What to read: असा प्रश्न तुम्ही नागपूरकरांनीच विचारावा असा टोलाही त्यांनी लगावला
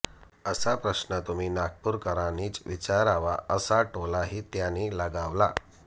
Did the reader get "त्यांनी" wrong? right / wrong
right